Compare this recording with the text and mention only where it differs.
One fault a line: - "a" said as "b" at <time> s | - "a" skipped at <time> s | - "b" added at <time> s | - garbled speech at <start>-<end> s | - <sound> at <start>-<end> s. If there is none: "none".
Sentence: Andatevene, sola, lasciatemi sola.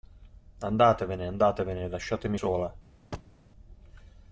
- "sola" said as "andatevene" at 1.3 s
- thud at 3.1-3.4 s